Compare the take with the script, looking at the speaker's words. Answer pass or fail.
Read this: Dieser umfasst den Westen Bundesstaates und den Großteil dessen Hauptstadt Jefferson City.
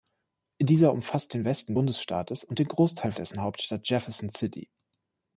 pass